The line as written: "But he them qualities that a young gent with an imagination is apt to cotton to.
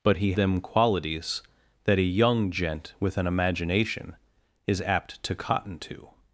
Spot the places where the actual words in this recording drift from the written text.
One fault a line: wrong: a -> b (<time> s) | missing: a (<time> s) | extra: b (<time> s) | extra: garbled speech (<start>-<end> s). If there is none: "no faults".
no faults